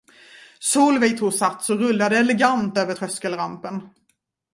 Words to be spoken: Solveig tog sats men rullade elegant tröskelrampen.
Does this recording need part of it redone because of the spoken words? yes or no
yes